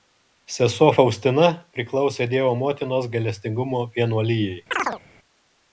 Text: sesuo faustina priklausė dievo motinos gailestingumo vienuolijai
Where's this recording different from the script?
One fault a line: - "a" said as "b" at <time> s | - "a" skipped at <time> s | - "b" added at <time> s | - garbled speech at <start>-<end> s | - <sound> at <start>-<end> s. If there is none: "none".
- chirp at 4.7-5.0 s